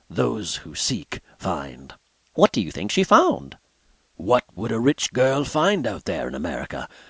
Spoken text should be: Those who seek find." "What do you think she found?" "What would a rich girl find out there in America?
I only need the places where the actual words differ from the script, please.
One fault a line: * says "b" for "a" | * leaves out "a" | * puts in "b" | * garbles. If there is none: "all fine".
all fine